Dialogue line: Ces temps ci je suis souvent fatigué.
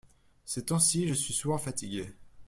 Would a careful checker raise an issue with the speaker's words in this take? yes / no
no